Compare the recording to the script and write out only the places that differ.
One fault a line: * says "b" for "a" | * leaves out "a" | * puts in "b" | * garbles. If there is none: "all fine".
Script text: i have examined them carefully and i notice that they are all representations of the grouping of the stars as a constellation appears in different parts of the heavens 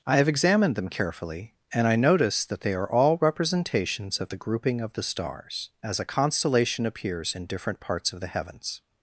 all fine